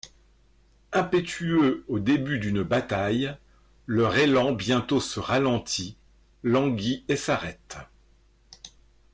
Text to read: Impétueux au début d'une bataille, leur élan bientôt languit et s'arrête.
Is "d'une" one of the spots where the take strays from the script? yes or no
no